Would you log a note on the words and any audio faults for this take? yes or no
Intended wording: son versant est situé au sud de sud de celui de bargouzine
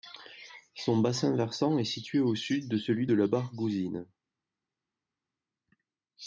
yes